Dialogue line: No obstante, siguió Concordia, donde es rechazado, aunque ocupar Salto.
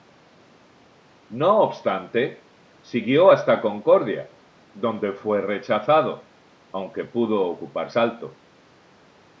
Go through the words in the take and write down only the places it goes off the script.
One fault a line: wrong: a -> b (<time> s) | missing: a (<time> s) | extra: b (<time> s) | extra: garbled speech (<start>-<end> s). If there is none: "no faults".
extra: hasta (3.3 s)
wrong: es -> fue (5.1 s)
extra: pudo (7.0 s)